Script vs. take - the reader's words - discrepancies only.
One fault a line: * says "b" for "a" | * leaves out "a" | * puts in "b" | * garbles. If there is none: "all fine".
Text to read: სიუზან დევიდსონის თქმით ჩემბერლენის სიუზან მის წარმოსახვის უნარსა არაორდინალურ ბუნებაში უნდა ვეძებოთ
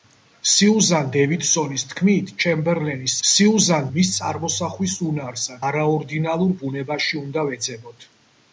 all fine